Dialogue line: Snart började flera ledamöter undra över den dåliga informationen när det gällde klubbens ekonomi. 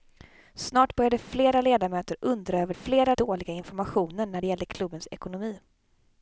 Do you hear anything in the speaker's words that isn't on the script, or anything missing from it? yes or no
yes